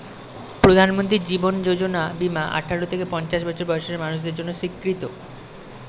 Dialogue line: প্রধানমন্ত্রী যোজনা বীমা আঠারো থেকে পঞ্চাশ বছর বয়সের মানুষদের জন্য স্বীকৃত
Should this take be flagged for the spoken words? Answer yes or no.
yes